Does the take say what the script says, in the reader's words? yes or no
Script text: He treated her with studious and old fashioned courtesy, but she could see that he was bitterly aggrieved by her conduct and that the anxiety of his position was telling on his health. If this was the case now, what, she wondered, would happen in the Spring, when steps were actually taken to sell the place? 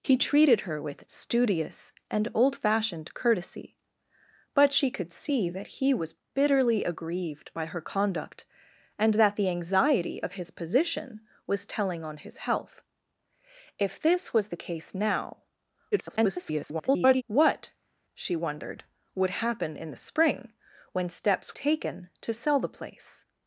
no